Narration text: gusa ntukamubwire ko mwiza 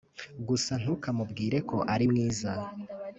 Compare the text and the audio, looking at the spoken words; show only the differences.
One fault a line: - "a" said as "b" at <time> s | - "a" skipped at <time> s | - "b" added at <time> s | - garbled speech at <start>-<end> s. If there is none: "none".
- "ari" added at 1.9 s